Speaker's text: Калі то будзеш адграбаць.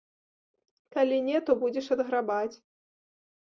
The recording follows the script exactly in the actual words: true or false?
false